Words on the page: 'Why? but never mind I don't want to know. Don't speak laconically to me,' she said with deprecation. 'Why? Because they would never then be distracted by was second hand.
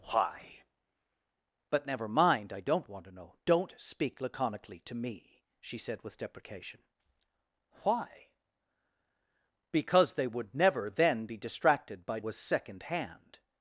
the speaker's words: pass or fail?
pass